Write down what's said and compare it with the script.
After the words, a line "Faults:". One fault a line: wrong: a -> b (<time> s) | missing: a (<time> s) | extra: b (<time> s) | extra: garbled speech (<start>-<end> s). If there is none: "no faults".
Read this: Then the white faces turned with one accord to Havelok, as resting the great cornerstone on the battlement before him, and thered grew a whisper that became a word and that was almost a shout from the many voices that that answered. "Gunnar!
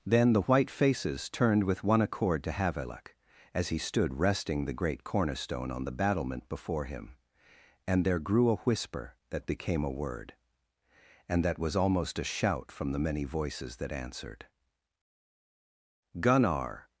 Then the white faces turned with one accord to Havelok, as he stood resting the great cornerstone on the battlement before him, and there grew a whisper that became a word and that was almost a shout from the many voices that answered. "Gunnar!
Faults:
extra: he stood (3.7 s)
wrong: thered -> there (8.1 s)
missing: that (13.9 s)